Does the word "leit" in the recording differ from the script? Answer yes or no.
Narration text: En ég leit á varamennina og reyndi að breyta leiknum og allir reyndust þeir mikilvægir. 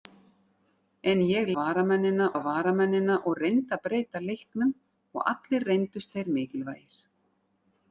yes